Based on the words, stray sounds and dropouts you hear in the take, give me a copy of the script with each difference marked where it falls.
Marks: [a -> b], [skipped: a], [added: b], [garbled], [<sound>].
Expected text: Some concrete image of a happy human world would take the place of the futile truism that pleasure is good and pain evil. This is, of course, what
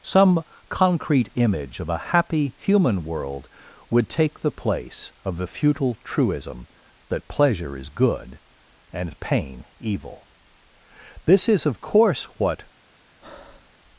Some concrete image of a happy human world would take the place of the futile truism that pleasure is good and pain evil. This is, of course, what [breath]